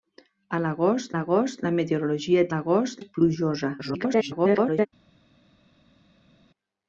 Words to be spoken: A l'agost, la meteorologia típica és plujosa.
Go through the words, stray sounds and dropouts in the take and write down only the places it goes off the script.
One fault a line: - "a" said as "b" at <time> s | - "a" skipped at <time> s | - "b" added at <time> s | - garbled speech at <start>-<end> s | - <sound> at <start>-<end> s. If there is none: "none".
- "l'agost" added at 1.1 s
- "típica" said as "l'agost" at 2.5 s
- garbled speech at 3.8-4.9 s